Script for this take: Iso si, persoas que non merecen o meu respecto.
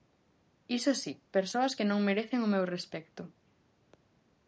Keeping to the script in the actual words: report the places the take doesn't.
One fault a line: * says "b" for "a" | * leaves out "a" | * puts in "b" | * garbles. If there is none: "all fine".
all fine